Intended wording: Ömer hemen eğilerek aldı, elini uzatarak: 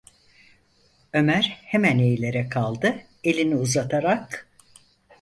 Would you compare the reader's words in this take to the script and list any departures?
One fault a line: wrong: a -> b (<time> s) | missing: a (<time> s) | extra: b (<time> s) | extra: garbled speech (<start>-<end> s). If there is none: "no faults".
no faults